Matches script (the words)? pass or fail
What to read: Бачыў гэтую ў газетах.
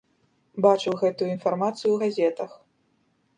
fail